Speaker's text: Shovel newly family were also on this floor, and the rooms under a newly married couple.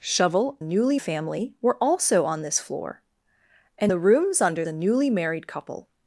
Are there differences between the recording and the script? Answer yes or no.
no